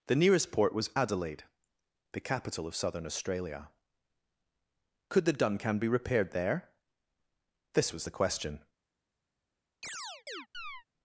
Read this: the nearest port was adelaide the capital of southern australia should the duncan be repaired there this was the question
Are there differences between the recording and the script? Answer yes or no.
yes